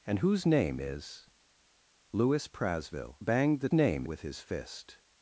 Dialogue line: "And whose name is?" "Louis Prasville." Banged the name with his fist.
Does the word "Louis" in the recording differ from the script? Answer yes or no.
no